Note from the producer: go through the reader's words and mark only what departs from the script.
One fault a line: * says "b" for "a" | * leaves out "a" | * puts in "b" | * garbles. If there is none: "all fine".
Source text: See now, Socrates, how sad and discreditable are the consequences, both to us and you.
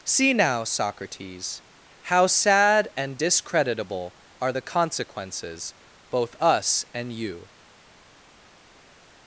* leaves out "to"